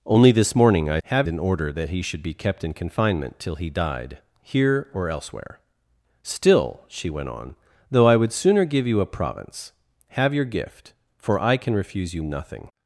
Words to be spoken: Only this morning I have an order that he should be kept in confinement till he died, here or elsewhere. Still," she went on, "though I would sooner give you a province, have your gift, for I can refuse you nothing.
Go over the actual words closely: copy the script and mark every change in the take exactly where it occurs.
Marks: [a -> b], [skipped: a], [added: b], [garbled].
Only this morning I have an order that he should be kept in confinement till he died, here or elsewhere. Still," she went on, "though I would sooner give you a province, have your gift, for I can refuse you nothing.